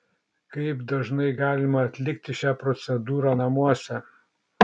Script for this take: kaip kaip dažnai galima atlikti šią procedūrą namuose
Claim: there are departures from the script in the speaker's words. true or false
true